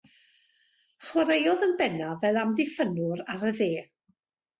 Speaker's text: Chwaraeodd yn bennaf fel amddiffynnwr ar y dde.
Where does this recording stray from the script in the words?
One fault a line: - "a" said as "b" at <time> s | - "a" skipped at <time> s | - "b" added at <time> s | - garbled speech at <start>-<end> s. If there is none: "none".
none